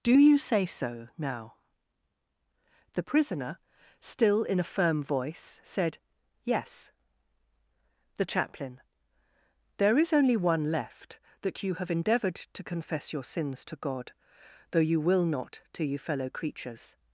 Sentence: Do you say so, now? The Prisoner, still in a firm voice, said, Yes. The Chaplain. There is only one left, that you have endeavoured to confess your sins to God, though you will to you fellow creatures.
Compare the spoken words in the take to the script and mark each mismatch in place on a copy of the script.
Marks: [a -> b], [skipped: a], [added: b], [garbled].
Do you say so, now? The Prisoner, still in a firm voice, said, Yes. The Chaplain. There is only one left, that you have endeavoured to confess your sins to God, though you will [added: not] to you fellow creatures.